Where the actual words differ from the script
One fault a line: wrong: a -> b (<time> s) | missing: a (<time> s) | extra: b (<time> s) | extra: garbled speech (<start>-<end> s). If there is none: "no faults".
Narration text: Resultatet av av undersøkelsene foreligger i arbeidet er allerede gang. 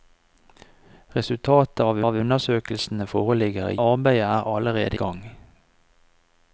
no faults